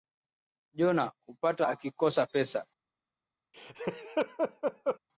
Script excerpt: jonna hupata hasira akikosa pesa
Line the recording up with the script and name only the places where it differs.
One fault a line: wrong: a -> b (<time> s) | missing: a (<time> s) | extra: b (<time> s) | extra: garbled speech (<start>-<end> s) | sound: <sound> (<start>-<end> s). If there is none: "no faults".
missing: hasira (1.7 s)
sound: laugh (3.5-5.0 s)